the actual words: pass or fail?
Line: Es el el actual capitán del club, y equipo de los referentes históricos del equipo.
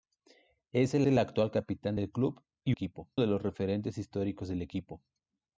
pass